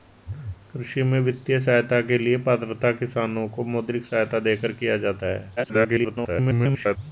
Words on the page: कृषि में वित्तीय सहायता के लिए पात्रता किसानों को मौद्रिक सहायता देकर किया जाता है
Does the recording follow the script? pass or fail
fail